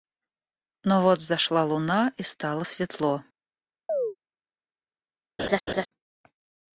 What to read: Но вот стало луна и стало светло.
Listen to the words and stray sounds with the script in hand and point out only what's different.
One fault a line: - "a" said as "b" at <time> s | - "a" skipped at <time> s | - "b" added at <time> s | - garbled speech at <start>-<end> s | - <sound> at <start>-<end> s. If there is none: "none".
- "стало" said as "взошла" at 1.2 s
- chirp at 3.9-4.2 s
- laugh at 5.4-5.9 s